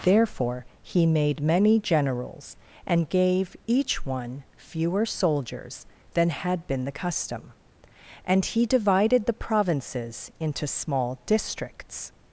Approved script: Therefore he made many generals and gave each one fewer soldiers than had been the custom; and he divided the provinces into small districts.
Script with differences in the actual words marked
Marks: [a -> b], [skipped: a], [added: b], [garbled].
Therefore he made many generals and gave each one fewer soldiers than had been the custom; and he divided the provinces into small districts.